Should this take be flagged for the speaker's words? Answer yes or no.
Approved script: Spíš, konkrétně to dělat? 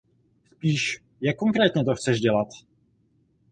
yes